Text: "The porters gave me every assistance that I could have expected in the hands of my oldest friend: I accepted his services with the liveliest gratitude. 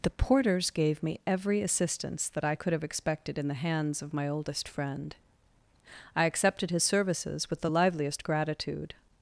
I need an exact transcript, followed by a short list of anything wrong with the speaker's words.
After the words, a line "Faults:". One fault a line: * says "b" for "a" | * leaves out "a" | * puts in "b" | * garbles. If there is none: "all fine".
"The porters gave me every assistance that I could have expected in the hands of my oldest friend: I accepted his services with the liveliest gratitude.
Faults:
all fine